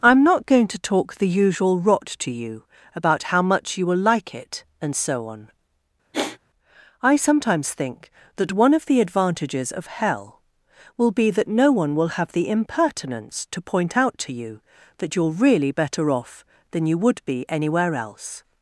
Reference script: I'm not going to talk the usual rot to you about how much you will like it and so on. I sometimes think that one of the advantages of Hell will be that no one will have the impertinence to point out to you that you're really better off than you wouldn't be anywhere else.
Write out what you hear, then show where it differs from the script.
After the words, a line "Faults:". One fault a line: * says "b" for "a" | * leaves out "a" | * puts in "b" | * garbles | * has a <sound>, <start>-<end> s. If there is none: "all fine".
I'm not going to talk the usual rot to you about how much you will like it and so on. I sometimes think that one of the advantages of Hell will be that no one will have the impertinence to point out to you that you're really better off than you would be anywhere else.
Faults:
* has a sigh, 6.1-6.4 s
* says "would" for "wouldn't"